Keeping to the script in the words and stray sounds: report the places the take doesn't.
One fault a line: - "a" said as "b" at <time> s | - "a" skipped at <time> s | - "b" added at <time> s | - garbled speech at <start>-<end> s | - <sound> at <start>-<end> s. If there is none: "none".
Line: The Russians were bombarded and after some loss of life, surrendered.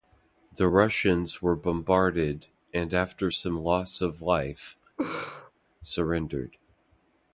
- laugh at 5.0-5.5 s